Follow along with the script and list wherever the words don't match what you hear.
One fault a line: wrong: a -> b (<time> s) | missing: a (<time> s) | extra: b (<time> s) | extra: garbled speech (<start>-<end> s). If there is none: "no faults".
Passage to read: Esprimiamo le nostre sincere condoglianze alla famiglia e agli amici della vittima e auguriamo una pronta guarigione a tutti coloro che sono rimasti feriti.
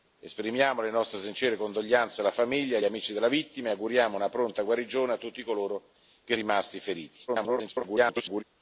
missing: agli (2.8 s)
missing: sono (6.4 s)
extra: garbled speech (7.3-8.4 s)